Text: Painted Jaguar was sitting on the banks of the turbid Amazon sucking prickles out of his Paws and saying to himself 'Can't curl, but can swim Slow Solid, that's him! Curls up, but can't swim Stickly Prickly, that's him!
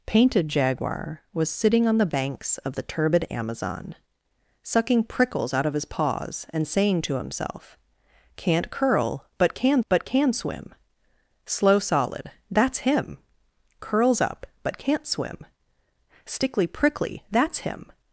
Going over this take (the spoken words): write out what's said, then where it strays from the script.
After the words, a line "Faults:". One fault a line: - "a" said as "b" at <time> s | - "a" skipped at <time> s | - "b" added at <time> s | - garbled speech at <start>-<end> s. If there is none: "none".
Painted Jaguar was sitting on the banks of the turbid Amazon sucking prickles out of his Paws and saying to himself 'Can't curl, but can but can swim Slow Solid, that's him! Curls up, but can't swim Stickly Prickly, that's him!
Faults:
- "but can" added at 9.9 s